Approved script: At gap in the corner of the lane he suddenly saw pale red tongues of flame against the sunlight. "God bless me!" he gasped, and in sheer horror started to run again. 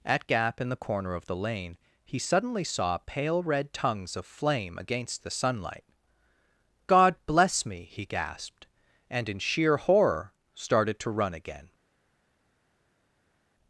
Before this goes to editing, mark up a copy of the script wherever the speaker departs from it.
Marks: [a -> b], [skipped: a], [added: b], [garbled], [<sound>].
At gap in the corner of the lane he suddenly saw pale red tongues of flame against the sunlight. "God bless me!" he gasped, and in sheer horror started to run again.